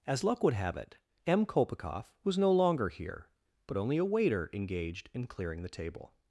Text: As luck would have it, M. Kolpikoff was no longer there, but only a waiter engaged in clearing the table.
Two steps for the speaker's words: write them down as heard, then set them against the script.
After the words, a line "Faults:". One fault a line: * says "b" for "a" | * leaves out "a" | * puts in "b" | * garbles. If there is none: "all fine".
As luck would have it, M. Kolpikoff was no longer here, but only a waiter engaged in clearing the table.
Faults:
* says "here" for "there"